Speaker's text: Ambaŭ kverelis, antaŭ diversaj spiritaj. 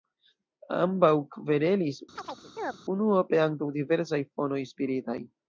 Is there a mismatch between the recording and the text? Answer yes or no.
yes